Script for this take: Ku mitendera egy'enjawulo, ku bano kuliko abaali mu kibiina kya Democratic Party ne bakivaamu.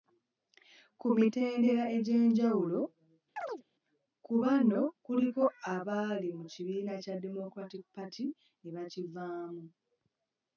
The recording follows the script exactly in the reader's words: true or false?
true